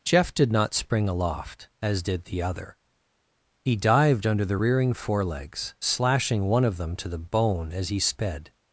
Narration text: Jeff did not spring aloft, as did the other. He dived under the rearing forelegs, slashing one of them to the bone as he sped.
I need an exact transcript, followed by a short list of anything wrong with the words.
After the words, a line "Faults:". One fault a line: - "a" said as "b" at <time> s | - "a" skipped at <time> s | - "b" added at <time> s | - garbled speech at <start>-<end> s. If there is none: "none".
Jeff did not spring aloft, as did the other. He dived under the rearing forelegs, slashing one of them to the bone as he sped.
Faults:
none